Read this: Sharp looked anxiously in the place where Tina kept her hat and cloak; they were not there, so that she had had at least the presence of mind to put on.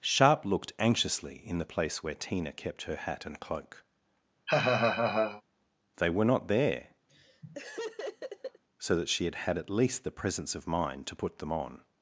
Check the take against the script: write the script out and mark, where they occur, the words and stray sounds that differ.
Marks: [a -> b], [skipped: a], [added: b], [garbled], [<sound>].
Sharp looked anxiously in the place where Tina kept her hat and cloak; [laugh] they were not there, [laugh] so that she had had at least the presence of mind to put [added: them] on.